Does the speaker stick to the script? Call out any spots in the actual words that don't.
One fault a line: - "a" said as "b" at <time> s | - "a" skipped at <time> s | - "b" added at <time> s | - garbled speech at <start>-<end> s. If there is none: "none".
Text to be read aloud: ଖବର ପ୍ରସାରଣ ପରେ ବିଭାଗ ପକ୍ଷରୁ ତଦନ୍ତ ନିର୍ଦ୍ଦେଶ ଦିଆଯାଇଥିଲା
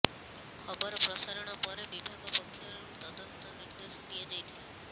none